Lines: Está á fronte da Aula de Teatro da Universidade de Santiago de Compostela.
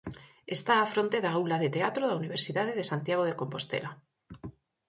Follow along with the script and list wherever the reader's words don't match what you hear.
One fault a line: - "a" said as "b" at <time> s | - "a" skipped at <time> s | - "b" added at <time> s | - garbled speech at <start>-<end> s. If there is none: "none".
none